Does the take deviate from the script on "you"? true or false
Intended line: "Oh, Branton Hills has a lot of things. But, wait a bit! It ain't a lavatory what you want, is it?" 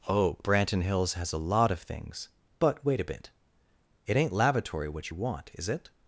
false